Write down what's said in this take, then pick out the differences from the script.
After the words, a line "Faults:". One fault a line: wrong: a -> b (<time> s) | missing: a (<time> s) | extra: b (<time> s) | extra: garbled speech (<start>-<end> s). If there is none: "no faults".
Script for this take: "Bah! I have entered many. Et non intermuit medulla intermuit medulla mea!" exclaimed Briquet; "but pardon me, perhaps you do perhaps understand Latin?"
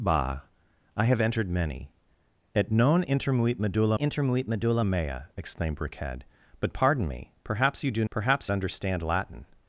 "Bah! I have entered many. Et non intermuit medulla intermuit medulla mea!" exclaimed Briquet; "but pardon me, perhaps you do perhaps understand Latin?"
Faults:
no faults